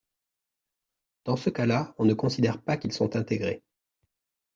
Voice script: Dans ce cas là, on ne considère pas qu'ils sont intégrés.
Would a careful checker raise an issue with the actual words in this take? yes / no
no